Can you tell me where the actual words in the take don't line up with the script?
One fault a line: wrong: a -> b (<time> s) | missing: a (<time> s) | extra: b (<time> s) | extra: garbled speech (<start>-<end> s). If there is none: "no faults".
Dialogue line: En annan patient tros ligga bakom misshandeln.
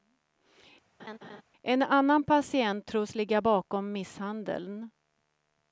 no faults